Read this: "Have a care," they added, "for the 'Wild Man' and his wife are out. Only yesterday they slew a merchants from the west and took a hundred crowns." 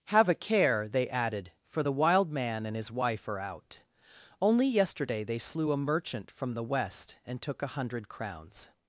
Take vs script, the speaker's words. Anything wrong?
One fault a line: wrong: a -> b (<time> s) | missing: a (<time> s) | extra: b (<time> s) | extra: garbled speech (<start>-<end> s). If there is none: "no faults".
wrong: merchants -> merchant (5.8 s)